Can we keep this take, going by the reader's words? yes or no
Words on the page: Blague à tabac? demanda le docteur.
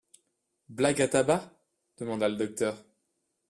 yes